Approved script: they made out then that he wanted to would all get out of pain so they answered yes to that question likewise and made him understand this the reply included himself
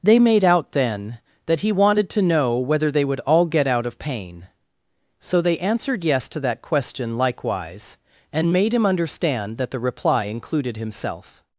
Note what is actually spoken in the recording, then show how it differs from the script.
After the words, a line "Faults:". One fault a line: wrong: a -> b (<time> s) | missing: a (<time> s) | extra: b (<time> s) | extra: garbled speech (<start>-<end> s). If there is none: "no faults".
they made out then that he wanted to know whether they would all get out of pain so they answered yes to that question likewise and made him understand that the reply included himself
Faults:
extra: know whether they (2.2 s)
wrong: this -> that (9.6 s)